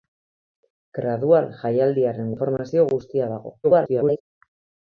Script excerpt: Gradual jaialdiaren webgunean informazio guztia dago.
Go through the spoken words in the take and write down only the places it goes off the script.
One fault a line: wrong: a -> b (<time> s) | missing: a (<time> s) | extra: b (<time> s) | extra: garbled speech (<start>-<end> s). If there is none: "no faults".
missing: webgunean (2.3 s)
extra: garbled speech (3.6-4.2 s)